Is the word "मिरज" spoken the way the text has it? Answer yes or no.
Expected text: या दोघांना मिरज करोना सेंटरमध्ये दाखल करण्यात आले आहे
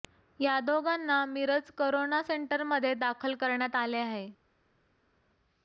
yes